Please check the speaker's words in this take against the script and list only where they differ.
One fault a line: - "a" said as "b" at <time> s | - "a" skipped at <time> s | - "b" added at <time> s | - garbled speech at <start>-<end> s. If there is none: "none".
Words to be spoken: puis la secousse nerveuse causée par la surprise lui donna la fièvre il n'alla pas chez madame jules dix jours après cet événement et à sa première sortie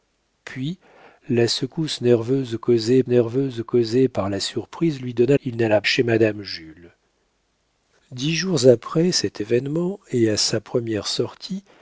- "nerveuse causée" added at 3.1 s
- "la fièvre" skipped at 5.4 s
- "pas" skipped at 5.8 s